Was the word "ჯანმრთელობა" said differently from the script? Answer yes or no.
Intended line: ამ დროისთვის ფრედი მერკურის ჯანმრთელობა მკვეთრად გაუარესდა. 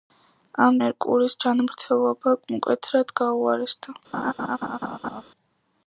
no